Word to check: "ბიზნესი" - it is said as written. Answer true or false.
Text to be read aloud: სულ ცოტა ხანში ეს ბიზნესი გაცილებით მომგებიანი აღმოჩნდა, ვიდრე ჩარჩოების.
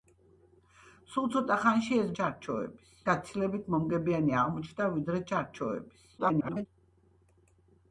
false